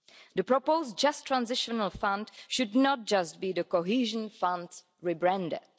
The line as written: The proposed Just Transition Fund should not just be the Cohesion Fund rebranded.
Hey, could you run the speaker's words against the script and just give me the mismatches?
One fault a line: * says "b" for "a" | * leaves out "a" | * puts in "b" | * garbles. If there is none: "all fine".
all fine